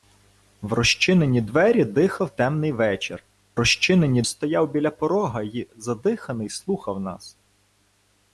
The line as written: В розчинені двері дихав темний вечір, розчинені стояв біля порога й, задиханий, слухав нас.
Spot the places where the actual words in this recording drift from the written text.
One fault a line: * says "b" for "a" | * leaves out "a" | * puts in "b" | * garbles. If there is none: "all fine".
all fine